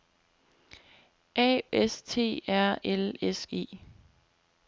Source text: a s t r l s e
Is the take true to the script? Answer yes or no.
yes